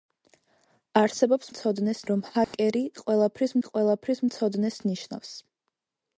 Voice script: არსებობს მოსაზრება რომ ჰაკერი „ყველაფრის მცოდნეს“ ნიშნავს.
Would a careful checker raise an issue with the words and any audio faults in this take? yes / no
yes